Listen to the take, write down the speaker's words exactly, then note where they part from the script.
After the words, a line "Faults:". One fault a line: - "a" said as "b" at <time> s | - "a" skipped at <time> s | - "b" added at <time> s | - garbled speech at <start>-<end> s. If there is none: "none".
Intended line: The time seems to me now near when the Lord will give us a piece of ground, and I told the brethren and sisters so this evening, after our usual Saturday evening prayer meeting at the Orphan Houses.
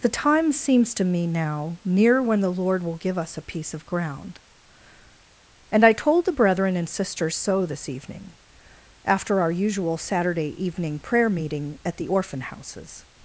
The time seems to me now near when the Lord will give us a piece of ground, and I told the brethren and sisters so this evening, after our usual Saturday evening prayer meeting at the Orphan Houses.
Faults:
none